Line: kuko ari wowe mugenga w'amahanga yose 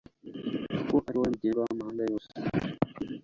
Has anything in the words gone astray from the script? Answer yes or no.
no